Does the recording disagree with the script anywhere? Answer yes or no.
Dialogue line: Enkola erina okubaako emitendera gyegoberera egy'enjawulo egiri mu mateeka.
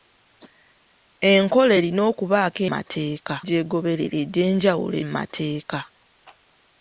yes